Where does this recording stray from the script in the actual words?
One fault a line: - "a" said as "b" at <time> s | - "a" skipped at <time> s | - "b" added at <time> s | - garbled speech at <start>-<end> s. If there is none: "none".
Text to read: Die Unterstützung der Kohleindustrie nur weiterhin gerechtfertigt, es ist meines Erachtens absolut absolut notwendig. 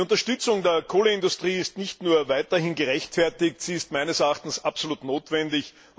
- "ist nicht" added at 1.6 s
- "es" said as "sie" at 3.6 s
- "absolut" skipped at 5.0 s